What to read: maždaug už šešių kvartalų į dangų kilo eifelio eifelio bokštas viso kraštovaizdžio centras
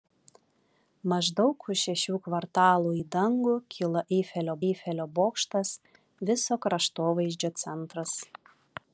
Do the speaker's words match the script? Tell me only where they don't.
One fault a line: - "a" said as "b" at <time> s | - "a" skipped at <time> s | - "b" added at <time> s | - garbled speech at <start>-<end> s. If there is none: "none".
none